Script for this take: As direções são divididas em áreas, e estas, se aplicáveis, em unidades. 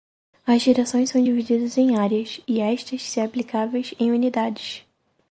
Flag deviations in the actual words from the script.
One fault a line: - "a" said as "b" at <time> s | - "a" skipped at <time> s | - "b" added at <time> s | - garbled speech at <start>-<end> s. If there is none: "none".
none